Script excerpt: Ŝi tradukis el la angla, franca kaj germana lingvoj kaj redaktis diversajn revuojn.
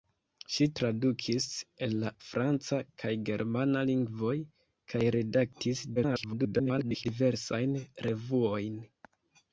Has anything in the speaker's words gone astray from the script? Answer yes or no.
yes